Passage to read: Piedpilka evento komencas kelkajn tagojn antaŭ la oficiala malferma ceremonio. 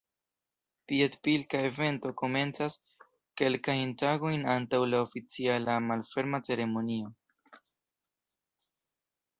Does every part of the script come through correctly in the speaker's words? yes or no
yes